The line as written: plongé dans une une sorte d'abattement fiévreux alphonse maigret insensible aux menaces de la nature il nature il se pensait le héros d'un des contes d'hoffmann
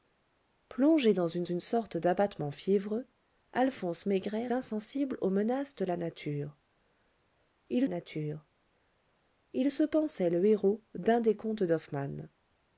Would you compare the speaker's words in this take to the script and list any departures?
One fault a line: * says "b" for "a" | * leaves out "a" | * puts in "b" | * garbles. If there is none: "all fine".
all fine